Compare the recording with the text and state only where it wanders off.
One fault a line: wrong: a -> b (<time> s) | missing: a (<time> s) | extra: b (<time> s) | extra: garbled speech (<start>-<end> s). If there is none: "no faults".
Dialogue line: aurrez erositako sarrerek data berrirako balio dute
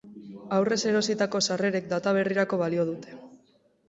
no faults